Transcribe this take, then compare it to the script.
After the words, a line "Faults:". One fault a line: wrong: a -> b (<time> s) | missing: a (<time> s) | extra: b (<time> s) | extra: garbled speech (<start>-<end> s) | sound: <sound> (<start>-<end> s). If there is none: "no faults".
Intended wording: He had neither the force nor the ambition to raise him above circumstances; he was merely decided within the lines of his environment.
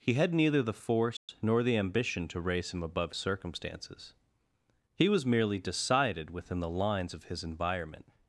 He had neither the force nor the ambition to raise him above circumstances; he was merely decided within the lines of his environment.
Faults:
sound: dropout (1.2-1.3 s)